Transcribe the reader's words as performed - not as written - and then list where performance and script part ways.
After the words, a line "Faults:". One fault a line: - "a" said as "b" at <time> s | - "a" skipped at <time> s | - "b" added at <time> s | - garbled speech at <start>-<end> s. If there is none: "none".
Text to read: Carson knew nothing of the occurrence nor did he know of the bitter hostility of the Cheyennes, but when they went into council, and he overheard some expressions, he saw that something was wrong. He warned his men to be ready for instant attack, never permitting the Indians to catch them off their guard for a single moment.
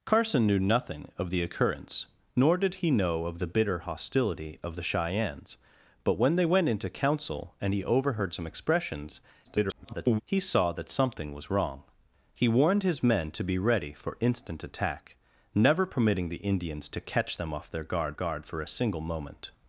Carson knew nothing of the occurrence nor did he know of the bitter hostility of the Cheyennes, but when they went into council, and he overheard some expressions, [garbled] he saw that something was wrong. He warned his men to be ready for instant attack, never permitting the Indians to catch them off their guard guard for a single moment.
Faults:
- garbled speech at 9.4-10.2 s
- "guard" added at 18.1 s